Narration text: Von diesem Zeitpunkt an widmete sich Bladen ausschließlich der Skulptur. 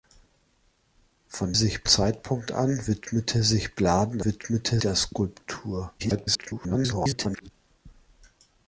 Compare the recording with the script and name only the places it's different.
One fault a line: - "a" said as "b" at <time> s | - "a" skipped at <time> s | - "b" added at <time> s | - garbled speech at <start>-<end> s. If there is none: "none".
- "diesem" said as "sich" at 1.5 s
- "ausschließlich" said as "widmete" at 4.3 s
- garbled speech at 6.0-7.5 s